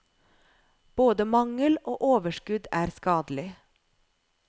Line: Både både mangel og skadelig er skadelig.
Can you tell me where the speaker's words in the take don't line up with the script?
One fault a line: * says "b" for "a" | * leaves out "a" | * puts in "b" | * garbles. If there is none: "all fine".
* leaves out "både"
* says "overskudd" for "skadelig"